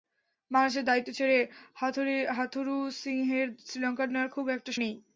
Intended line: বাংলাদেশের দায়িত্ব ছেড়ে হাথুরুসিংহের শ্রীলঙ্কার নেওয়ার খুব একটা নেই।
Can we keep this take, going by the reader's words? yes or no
yes